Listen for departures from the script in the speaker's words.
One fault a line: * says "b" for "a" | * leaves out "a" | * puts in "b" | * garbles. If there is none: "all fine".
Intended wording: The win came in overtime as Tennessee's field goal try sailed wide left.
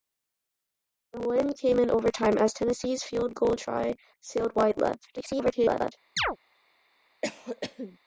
* garbles